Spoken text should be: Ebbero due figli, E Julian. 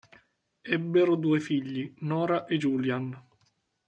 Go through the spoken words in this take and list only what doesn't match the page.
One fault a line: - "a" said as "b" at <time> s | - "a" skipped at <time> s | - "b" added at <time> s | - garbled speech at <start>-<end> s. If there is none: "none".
- "Nora" added at 2.0 s